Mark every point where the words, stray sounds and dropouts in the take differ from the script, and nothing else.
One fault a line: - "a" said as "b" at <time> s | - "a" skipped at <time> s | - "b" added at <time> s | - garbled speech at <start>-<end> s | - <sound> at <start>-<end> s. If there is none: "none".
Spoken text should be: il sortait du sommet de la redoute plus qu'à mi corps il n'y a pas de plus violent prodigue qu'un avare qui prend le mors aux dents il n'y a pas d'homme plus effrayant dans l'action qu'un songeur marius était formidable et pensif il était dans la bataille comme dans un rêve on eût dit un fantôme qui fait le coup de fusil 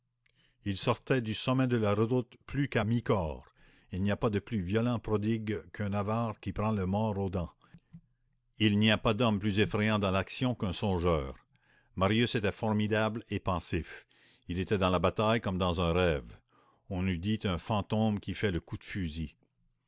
none